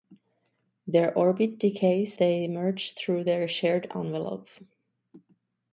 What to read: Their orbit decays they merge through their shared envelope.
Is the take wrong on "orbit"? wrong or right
right